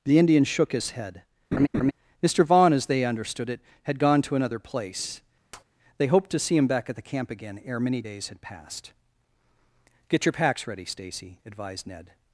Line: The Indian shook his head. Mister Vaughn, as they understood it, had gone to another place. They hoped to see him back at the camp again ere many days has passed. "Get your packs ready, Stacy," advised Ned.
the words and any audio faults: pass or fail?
fail